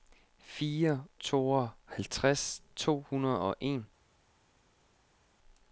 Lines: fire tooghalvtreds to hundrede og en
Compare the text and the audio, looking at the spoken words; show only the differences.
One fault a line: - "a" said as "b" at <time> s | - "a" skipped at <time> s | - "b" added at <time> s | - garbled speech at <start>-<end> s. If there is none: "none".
none